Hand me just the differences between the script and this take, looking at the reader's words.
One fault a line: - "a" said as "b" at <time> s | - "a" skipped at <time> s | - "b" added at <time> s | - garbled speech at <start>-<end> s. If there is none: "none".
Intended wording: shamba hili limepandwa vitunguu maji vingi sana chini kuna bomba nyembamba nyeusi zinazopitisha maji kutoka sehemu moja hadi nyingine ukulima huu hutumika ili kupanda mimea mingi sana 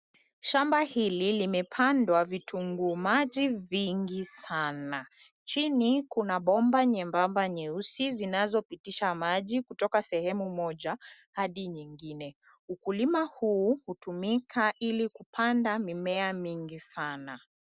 none